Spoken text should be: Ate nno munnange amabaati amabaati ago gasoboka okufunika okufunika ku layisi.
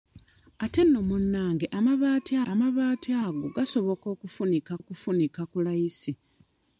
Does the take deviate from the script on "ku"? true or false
false